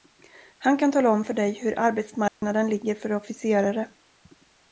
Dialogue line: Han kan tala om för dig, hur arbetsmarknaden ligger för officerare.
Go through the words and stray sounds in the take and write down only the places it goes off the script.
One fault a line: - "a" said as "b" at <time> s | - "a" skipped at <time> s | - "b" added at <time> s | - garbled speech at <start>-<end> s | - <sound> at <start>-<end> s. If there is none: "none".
- dropout at 2.3-2.4 s